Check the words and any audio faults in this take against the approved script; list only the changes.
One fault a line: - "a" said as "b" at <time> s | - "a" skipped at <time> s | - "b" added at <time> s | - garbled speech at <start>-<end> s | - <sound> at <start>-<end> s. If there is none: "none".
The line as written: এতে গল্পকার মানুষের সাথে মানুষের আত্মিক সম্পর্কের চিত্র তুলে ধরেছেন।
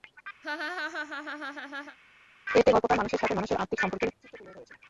- laugh at 0.4-2.0 s